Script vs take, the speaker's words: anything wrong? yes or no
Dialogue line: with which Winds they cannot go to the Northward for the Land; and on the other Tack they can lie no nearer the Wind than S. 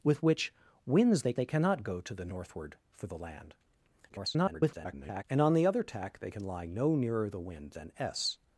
yes